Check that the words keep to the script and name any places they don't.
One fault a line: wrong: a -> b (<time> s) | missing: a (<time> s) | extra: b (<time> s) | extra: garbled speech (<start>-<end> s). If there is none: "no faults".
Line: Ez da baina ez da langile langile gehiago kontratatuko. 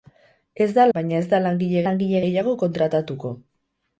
no faults